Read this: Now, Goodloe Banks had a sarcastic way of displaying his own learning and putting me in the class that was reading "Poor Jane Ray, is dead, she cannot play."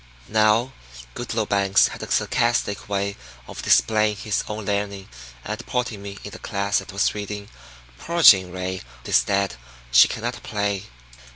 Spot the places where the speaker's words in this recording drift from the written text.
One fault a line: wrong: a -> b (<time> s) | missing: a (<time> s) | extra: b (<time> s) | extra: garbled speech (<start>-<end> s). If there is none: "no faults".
no faults